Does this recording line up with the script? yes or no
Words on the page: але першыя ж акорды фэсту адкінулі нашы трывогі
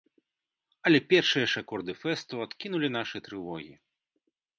yes